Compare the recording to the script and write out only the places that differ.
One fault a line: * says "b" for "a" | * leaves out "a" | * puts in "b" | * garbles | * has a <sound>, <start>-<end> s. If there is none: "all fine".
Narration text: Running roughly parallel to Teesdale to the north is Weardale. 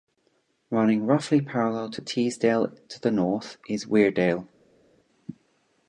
all fine